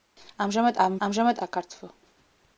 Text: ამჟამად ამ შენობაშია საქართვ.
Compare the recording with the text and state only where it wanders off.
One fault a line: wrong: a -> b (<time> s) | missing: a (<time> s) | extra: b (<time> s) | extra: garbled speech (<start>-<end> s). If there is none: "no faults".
wrong: შენობაშია -> ამჟამად (1.1 s)